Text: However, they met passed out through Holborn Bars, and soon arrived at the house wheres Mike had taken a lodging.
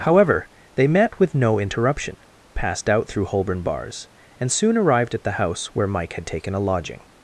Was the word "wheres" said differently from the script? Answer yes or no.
yes